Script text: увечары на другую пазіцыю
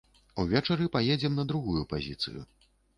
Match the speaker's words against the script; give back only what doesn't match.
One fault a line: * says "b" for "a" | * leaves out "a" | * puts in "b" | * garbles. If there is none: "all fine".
* puts in "паедзем"